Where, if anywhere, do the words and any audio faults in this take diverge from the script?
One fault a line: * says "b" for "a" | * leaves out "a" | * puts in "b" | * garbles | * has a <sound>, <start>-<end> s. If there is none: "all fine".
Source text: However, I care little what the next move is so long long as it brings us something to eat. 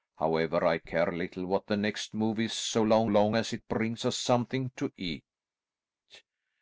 all fine